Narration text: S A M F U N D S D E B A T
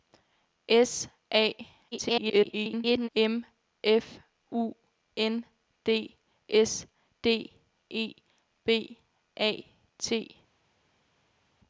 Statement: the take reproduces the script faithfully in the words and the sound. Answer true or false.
false